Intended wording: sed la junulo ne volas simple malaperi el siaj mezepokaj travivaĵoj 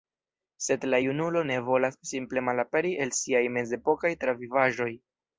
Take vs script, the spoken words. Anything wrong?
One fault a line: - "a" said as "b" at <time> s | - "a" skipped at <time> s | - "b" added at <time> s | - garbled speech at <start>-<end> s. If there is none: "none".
none